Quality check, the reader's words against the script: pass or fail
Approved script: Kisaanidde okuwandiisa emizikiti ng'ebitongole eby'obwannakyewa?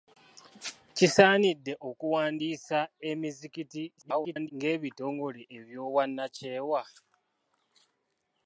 fail